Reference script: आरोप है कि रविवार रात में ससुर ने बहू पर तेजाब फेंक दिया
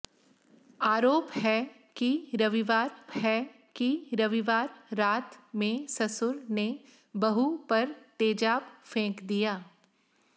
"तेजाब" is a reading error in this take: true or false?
false